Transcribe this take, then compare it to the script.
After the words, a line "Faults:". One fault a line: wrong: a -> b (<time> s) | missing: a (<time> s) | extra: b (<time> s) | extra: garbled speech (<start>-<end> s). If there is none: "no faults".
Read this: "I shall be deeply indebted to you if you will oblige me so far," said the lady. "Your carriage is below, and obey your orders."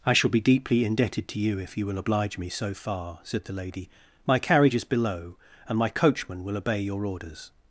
"I shall be deeply indebted to you if you will oblige me so far," said the lady. "My carriage is below, and my coachman will obey your orders."
Faults:
wrong: Your -> My (4.2 s)
extra: my coachman will (5.8 s)